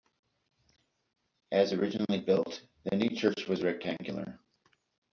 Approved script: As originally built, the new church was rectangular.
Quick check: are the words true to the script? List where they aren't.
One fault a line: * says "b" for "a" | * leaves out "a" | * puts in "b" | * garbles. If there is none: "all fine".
all fine